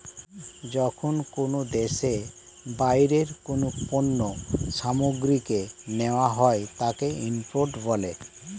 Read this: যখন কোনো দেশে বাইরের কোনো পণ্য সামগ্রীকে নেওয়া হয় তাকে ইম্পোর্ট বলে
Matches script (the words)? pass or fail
pass